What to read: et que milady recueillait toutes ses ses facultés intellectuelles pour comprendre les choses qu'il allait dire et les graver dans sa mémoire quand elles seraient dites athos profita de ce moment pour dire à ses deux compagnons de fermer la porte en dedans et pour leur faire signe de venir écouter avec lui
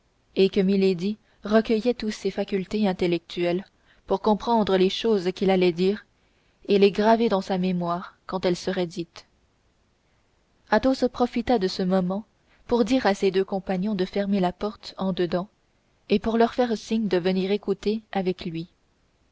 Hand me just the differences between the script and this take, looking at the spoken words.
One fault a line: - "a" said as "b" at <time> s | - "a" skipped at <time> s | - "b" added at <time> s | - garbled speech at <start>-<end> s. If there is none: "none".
- "ses" skipped at 2.3 s